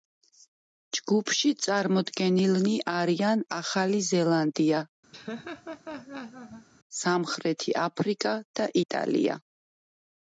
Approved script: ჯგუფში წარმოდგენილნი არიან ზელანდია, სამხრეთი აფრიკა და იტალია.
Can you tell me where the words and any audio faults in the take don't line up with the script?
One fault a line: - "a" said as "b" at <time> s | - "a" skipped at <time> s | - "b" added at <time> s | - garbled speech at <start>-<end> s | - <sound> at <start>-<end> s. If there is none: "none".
- "ახალი" added at 3.6 s
- laugh at 5.1-6.7 s